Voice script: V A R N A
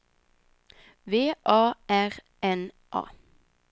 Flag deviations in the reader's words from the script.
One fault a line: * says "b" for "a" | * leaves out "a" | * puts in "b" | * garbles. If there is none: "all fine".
all fine